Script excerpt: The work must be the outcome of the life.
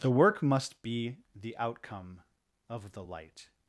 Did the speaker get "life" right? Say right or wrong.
wrong